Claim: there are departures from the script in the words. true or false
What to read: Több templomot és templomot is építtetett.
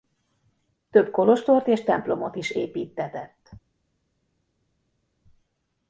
true